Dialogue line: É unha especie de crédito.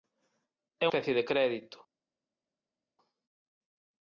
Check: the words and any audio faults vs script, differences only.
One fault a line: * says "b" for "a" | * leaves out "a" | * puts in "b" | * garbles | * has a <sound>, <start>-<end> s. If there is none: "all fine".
* leaves out "unha"